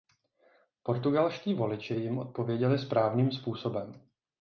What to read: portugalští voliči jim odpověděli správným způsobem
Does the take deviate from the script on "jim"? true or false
false